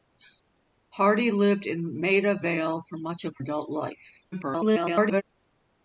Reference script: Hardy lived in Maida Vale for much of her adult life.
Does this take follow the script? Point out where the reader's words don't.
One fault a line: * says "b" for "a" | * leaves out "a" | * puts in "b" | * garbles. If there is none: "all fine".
* leaves out "her"
* garbles